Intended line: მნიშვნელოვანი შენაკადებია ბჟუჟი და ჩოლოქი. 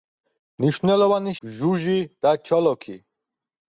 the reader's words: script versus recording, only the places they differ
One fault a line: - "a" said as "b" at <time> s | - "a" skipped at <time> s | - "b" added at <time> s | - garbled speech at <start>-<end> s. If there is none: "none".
- "შენაკადებია" skipped at 1.3 s